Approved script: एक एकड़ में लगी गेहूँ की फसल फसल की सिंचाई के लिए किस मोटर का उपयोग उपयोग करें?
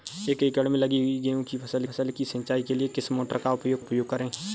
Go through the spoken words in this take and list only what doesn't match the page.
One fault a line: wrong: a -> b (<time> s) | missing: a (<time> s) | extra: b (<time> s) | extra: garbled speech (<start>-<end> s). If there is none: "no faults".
no faults